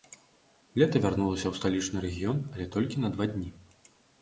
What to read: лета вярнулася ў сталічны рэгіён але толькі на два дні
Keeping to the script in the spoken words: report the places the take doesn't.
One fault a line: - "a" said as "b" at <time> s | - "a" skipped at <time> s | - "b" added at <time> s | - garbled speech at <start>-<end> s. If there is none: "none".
none